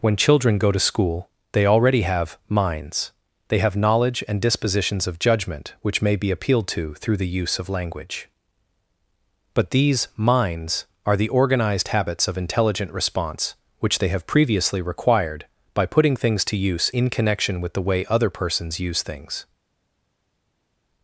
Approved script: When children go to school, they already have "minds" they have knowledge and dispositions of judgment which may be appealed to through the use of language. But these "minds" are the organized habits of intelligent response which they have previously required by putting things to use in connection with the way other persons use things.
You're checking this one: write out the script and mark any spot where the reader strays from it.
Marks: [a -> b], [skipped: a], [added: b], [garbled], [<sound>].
When children go to school, they already have "minds" they have knowledge and dispositions of judgment which may be appealed to through the use of language. But these "minds" are the organized habits of intelligent response which they have previously required by putting things to use in connection with the way other persons use things.